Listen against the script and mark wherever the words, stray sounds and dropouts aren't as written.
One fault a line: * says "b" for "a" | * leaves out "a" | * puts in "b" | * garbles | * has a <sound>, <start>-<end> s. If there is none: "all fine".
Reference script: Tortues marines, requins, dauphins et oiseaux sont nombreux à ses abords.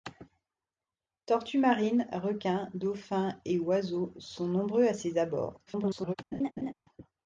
* garbles
* has a laugh, 6.3-6.7 s